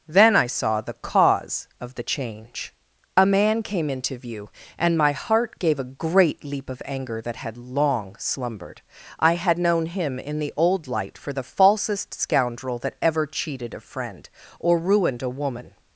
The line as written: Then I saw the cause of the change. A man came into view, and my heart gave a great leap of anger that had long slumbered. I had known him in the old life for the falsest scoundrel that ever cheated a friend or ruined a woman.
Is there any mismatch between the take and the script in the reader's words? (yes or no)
yes